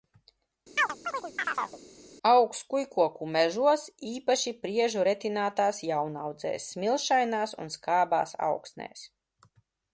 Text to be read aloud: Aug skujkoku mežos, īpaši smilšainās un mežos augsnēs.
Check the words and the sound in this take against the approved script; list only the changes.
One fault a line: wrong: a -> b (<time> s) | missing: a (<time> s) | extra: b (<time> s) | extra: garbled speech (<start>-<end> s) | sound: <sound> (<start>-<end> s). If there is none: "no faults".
sound: chirp (0.8-1.8 s)
extra: priežu retinātās jaunaudzēs (4.6 s)
wrong: mežos -> skābās (7.8 s)